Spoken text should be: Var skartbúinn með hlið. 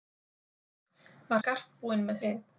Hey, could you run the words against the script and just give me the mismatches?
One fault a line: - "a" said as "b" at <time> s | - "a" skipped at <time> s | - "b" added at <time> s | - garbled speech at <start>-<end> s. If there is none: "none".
none